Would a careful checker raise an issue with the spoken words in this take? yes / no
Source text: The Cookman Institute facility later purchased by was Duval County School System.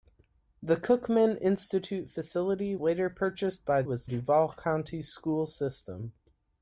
no